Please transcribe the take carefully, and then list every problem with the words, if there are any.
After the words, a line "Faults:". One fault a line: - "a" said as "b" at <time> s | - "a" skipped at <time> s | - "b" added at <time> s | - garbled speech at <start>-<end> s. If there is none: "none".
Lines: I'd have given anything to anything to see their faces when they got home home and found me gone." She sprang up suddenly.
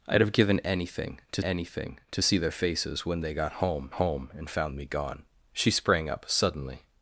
I'd have given anything to anything to see their faces when they got home home and found me gone." She sprang up suddenly.
Faults:
none